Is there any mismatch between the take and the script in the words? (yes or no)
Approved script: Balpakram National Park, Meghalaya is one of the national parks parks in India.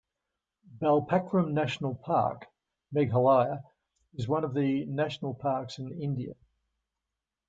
yes